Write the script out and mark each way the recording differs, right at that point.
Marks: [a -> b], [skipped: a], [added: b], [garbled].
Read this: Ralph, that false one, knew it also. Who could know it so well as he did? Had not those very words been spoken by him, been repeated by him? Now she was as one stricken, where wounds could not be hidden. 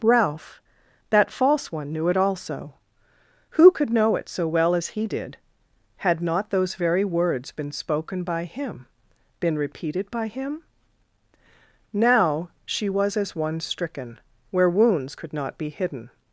Ralph, that false one, knew it also. Who could know it so well as he did? Had not those very words been spoken by him, been repeated by him? Now she was as one stricken, where wounds could not be hidden.